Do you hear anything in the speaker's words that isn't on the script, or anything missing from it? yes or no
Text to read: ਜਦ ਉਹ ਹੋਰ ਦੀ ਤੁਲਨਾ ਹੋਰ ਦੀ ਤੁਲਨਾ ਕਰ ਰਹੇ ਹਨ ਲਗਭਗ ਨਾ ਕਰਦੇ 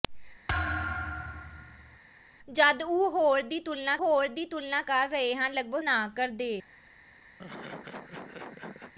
no